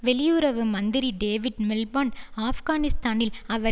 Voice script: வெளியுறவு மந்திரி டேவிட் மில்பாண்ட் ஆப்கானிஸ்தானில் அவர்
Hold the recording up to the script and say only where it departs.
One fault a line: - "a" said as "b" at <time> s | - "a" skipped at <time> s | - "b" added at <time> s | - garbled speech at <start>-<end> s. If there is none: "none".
none